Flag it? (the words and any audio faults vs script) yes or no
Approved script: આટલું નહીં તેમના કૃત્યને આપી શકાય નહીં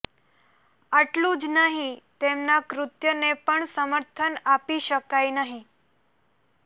yes